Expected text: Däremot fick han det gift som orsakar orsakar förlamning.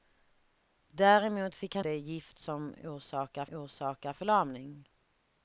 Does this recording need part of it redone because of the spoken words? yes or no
no